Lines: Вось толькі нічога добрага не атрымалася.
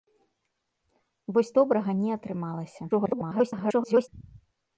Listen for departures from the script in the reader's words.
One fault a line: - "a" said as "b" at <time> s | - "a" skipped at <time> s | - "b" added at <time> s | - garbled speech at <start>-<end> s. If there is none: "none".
- "толькі нічога" skipped at 1.5 s
- garbled speech at 2.9-4.1 s